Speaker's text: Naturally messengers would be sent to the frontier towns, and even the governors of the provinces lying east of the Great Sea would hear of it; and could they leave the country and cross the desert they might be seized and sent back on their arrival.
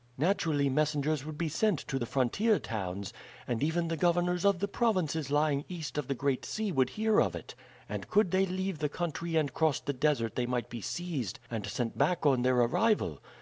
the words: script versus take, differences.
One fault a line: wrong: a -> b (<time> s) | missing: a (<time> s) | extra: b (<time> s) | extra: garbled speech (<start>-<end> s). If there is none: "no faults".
no faults